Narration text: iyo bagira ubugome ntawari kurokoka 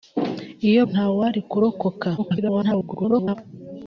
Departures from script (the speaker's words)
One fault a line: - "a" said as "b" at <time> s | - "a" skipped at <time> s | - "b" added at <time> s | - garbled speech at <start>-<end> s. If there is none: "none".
- "bagira ubugome" skipped at 0.8 s
- garbled speech at 2.2-3.4 s